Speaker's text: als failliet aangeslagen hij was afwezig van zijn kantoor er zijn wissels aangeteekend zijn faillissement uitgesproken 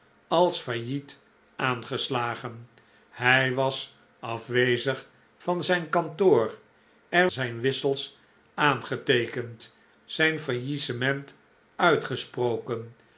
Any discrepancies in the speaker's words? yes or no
no